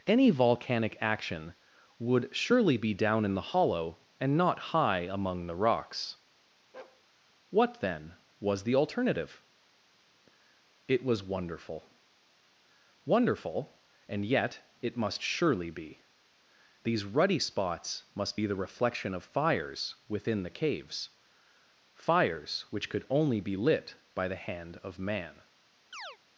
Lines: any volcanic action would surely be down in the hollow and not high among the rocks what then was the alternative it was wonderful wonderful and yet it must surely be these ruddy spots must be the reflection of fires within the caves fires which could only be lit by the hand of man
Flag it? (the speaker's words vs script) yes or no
no